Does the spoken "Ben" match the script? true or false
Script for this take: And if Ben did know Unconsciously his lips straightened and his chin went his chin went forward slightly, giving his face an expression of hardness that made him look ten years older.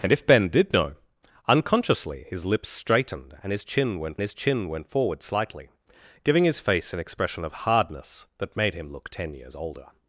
true